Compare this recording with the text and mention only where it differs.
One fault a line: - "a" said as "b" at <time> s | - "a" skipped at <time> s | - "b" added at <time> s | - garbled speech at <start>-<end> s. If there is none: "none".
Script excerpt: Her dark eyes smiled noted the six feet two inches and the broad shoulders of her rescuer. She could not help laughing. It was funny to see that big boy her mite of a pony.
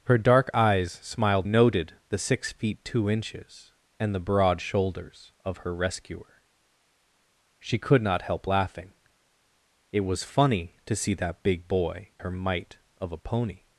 none